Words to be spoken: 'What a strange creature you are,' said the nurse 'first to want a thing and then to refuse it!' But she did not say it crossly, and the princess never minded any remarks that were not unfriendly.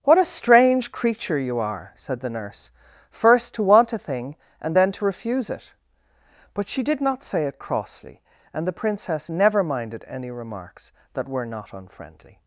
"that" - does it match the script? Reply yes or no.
yes